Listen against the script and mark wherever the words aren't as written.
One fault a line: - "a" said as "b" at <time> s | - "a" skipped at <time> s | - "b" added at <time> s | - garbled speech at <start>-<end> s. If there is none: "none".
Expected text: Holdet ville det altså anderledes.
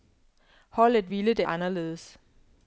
- "altså" skipped at 1.4 s